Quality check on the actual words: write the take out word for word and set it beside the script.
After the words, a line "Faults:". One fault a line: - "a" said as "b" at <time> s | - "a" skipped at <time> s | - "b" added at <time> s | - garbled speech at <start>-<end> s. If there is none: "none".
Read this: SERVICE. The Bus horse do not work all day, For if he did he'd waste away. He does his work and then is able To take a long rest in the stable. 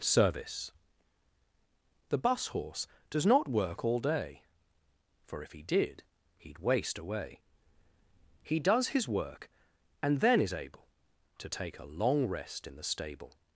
SERVICE. The Bus horse does not work all day, For if he did he'd waste away. He does his work and then is able To take a long rest in the stable.
Faults:
- "do" said as "does" at 3.1 s